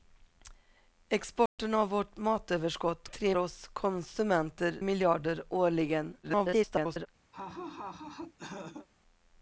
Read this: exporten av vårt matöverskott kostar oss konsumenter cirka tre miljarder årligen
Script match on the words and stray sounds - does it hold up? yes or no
no